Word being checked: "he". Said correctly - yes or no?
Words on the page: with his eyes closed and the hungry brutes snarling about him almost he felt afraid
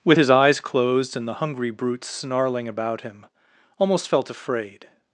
no